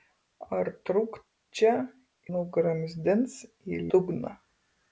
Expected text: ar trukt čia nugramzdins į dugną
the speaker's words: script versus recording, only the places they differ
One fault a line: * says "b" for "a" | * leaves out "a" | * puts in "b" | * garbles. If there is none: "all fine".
all fine